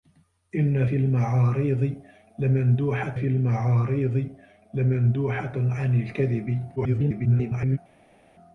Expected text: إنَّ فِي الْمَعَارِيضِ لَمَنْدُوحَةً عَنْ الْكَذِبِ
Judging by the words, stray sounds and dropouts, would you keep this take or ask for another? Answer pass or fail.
fail